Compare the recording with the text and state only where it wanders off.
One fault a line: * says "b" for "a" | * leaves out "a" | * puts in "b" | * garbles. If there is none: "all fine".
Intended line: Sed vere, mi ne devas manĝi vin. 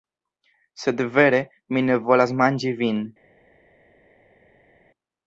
* says "volas" for "devas"